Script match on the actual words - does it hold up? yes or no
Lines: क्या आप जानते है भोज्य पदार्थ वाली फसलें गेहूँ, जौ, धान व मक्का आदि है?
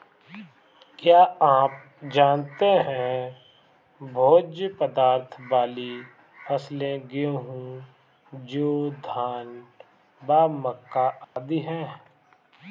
yes